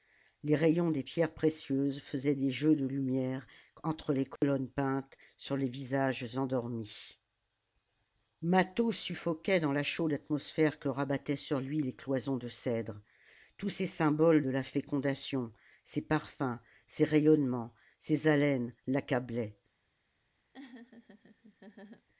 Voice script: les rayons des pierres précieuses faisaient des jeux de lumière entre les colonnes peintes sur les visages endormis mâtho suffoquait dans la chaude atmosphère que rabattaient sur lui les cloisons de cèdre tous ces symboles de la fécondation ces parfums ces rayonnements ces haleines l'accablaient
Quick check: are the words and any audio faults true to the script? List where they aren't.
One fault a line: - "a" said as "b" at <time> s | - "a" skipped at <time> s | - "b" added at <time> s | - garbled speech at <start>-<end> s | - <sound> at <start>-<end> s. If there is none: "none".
- dropout at 4.4-4.4 s
- laugh at 20.5-22.1 s